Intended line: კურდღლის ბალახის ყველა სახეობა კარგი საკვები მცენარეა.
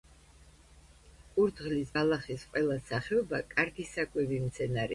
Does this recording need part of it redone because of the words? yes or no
no